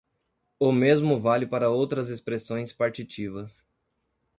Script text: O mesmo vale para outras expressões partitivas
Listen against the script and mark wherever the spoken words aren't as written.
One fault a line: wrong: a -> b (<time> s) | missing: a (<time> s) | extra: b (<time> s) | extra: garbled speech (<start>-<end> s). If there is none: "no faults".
no faults